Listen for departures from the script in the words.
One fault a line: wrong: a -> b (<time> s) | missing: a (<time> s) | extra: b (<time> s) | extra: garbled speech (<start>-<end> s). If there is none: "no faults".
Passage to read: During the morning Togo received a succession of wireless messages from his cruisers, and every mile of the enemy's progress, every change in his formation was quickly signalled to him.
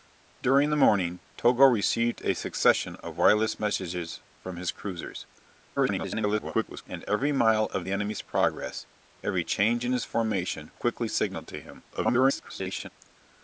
extra: garbled speech (5.8-6.8 s)
missing: was (10.7 s)
extra: garbled speech (11.9-12.9 s)